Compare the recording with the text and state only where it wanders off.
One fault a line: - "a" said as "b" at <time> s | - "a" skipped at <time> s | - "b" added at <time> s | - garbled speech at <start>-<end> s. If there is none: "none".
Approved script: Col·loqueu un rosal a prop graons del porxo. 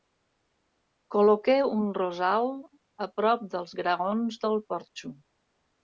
- "dels" added at 3.6 s